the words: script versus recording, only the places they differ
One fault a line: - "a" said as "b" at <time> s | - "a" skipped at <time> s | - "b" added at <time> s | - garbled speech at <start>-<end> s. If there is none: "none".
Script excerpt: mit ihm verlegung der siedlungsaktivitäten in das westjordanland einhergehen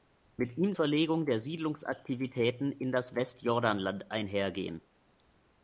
none